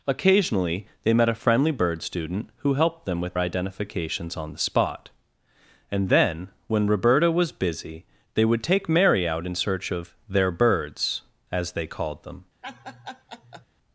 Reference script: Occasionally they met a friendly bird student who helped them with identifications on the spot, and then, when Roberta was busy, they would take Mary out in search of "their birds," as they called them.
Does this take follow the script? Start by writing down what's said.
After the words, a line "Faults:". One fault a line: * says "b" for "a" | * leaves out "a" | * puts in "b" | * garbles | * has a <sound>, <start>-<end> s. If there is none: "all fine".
Occasionally they met a friendly bird student who helped them with identifications on the spot, and then, when Roberta was busy, they would take Mary out in search of "their birds," as they called them.
Faults:
* has a laugh, 12.6-13.7 s